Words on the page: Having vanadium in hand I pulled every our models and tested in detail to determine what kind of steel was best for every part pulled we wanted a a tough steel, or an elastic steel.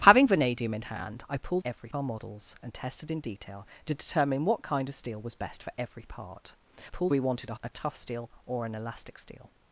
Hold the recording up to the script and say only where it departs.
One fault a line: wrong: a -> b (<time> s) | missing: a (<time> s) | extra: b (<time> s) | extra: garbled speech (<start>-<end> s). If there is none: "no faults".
no faults